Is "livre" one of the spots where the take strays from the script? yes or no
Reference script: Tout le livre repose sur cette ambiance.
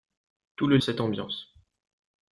yes